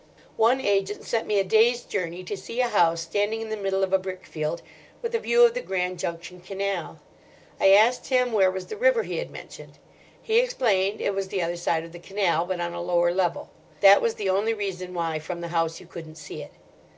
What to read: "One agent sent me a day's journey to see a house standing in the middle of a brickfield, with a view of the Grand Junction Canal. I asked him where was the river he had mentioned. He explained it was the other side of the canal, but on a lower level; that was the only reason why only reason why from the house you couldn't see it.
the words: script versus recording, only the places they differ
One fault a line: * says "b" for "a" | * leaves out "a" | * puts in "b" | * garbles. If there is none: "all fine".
* leaves out "only reason why"